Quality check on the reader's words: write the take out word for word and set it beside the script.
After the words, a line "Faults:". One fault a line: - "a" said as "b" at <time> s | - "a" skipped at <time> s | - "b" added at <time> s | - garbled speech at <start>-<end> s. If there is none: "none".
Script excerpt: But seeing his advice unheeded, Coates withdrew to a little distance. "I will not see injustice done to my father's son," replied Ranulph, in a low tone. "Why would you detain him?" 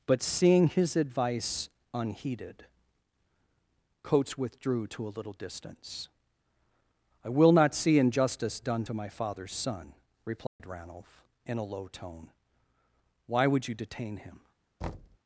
But seeing his advice unheeded, Coates withdrew to a little distance. "I will not see injustice done to my father's son," replied Ranulph, in a low tone. "Why would you detain him?"
Faults:
none